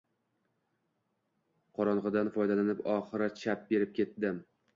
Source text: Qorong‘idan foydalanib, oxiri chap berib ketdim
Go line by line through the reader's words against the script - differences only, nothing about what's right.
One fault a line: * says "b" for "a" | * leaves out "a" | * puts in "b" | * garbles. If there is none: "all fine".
all fine